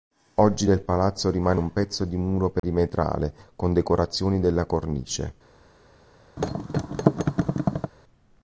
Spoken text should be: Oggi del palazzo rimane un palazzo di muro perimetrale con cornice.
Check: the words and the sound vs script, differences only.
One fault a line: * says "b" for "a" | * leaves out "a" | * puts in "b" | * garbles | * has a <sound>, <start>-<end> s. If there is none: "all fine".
* says "pezzo" for "palazzo"
* has a dropout, 2.6-2.6 s
* puts in "decorazioni della"
* has a thud, 6.4-7.9 s